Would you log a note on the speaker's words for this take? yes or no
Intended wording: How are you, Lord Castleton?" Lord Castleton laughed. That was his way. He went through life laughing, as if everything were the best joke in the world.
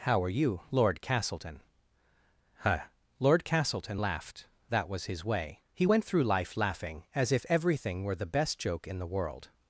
yes